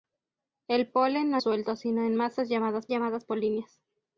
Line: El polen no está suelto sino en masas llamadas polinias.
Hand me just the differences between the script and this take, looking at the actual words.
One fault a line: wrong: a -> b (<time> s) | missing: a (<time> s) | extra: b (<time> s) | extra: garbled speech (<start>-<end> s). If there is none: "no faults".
missing: está (1.4 s)
extra: llamadas (2.9 s)